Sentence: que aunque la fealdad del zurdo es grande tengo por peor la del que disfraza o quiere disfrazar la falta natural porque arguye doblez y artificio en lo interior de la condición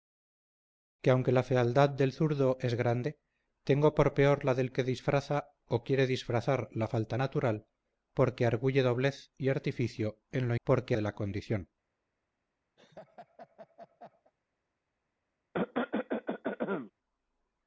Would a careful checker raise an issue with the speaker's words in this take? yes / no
yes